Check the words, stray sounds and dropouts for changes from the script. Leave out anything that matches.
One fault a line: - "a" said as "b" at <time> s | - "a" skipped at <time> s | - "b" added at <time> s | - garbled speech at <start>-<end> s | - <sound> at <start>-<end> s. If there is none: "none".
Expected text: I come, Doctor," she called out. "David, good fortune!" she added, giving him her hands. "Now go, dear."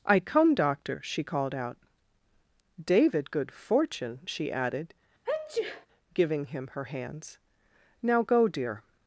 - sneeze at 5.2-5.9 s